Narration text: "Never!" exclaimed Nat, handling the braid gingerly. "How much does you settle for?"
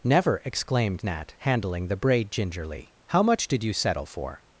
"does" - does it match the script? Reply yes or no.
no